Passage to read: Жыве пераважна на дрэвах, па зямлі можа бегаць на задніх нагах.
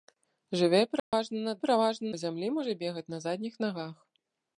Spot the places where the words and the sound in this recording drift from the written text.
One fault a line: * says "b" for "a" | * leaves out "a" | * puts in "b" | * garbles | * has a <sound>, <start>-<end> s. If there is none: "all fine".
* has a dropout, 1.0-1.1 s
* says "пераважна" for "дрэвах"